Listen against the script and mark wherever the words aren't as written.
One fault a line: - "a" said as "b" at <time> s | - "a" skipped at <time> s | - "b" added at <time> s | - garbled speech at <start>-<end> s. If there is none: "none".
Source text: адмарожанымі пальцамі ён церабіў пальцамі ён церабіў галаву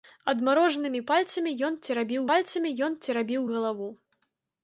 none